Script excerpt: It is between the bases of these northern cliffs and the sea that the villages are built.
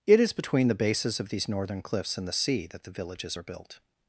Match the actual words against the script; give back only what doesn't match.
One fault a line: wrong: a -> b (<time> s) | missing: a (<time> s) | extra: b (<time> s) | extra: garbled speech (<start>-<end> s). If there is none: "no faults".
no faults